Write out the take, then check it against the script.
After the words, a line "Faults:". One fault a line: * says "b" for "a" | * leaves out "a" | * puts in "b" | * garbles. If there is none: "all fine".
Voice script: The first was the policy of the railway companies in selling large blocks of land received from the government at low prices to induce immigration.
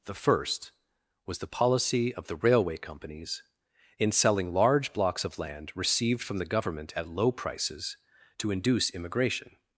The first was the policy of the railway companies in selling large blocks of land received from the government at low prices to induce immigration.
Faults:
all fine